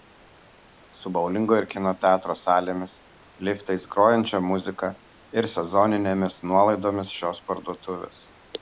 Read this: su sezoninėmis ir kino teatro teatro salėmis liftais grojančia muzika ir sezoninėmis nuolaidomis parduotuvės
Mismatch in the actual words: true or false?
true